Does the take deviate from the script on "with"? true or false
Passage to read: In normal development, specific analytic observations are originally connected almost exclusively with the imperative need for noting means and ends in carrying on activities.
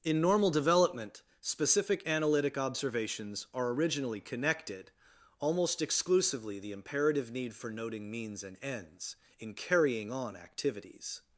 true